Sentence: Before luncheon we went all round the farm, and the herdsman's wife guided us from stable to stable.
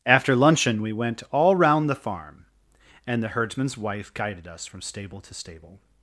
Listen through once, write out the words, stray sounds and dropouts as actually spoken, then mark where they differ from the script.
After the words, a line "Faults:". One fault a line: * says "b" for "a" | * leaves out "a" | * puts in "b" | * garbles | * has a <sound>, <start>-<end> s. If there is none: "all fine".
After luncheon we went all round the farm, and the herdsman's wife guided us from stable to stable.
Faults:
* says "After" for "Before"